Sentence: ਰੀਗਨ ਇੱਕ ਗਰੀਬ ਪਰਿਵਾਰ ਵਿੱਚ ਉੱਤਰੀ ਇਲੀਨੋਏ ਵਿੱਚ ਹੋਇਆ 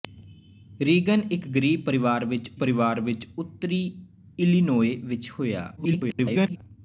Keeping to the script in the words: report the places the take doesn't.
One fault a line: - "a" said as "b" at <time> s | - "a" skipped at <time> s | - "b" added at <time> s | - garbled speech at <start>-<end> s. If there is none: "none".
- "ਪਰਿਵਾਰ ਵਿੱਚ" added at 2.6 s
- garbled speech at 5.8-6.6 s